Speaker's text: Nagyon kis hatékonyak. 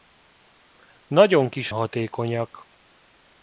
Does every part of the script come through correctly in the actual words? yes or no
yes